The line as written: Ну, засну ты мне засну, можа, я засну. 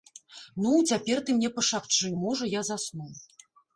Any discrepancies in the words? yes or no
yes